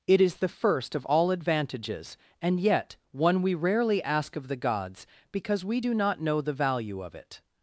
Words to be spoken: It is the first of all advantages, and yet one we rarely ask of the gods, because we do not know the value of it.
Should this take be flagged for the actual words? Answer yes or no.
no